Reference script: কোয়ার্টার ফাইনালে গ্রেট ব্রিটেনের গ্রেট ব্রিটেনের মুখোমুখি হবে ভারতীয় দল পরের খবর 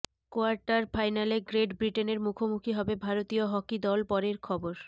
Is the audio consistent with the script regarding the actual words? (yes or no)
no